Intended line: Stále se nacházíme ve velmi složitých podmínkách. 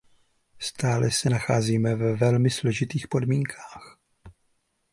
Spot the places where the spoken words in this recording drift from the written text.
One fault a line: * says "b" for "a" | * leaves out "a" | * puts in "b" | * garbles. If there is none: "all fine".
all fine